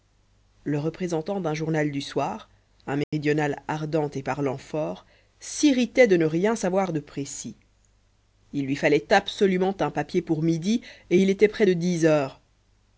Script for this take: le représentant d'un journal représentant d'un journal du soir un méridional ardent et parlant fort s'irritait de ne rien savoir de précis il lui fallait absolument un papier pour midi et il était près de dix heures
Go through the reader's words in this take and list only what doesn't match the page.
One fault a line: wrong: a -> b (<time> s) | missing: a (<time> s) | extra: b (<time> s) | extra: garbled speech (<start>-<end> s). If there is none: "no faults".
missing: représentant d'un journal (1.9 s)